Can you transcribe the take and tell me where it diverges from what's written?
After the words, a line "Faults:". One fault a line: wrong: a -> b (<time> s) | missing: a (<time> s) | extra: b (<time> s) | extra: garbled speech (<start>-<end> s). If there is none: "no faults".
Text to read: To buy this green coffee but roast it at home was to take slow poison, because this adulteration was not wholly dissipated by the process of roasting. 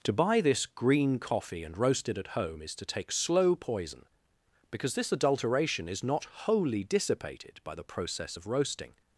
To buy this green coffee and roast it at home is to take slow poison, because this adulteration is not wholly dissipated by the process of roasting.
Faults:
wrong: but -> and (1.6 s)
wrong: was -> is (2.6 s)
wrong: was -> is (5.9 s)